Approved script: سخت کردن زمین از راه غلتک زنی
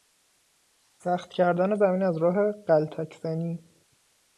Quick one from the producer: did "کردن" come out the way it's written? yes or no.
yes